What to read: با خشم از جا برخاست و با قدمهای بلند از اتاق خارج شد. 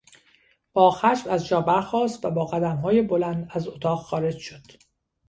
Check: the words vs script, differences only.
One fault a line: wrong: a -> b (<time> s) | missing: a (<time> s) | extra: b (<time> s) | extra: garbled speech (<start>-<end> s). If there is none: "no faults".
no faults